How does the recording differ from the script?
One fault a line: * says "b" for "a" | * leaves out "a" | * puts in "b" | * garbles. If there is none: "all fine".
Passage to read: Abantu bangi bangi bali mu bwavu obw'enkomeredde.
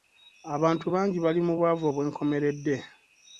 * leaves out "bangi"